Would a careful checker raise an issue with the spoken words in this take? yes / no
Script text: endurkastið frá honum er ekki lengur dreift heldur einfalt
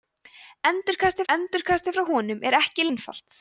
yes